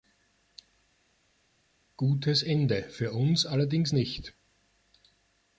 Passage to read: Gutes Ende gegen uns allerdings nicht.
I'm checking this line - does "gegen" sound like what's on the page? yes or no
no